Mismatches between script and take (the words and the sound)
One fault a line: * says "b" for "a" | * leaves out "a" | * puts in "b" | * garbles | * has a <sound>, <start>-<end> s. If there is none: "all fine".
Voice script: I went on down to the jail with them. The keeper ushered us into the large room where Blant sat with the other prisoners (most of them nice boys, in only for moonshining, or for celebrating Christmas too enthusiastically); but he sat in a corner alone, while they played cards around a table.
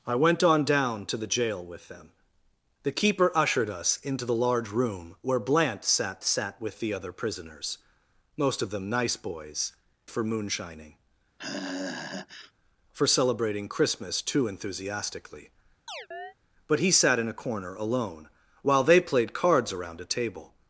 * puts in "sat"
* leaves out "in only"
* leaves out "or"
* has a sigh, 11.4-12.5 s
* has a chirp, 15.9-16.3 s